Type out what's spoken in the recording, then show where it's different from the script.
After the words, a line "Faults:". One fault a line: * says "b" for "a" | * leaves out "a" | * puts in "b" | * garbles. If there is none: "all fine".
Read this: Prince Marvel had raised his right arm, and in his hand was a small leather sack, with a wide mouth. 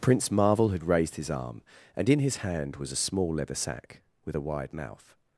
Prince Marvel had raised his arm, and in his hand was a small leather sack, with a wide mouth.
Faults:
* leaves out "right"